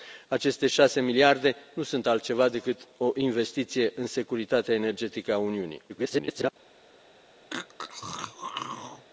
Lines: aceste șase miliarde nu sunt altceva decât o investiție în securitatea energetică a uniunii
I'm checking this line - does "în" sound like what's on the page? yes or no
yes